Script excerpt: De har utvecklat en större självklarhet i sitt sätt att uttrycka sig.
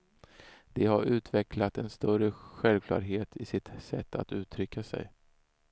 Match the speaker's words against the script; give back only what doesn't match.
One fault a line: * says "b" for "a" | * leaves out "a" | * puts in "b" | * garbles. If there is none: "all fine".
all fine